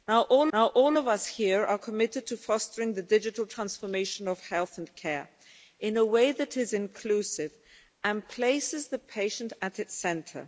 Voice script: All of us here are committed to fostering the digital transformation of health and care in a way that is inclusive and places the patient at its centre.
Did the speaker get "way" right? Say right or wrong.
right